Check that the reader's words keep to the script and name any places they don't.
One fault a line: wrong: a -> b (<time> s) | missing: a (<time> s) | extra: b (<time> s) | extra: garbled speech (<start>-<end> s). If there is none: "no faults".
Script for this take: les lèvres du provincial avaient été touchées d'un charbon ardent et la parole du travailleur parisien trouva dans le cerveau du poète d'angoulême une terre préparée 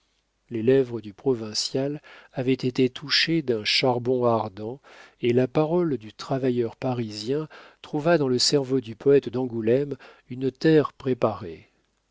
no faults